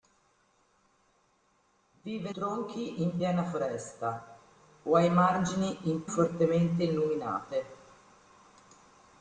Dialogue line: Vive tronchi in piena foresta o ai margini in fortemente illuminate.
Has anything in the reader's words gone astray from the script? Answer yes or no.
no